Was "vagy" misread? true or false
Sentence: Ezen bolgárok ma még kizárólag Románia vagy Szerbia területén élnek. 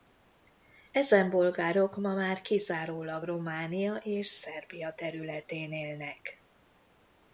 true